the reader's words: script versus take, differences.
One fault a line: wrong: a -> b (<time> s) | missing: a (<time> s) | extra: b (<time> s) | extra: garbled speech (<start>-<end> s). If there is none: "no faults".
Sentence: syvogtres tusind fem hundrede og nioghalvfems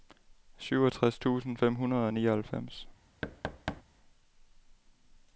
no faults